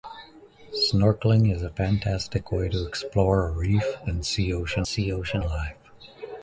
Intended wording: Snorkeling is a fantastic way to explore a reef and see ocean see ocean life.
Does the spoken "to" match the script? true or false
true